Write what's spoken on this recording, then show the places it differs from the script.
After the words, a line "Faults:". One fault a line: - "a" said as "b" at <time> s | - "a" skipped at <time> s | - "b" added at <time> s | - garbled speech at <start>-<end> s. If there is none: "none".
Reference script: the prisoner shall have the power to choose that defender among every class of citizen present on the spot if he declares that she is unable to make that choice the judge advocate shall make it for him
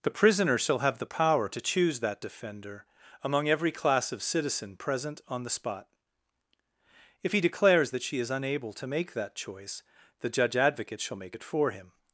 the prisoner shall have the power to choose that defender among every class of citizen present on the spot if he declares that she is unable to make that choice the judge advocate shall make it for him
Faults:
none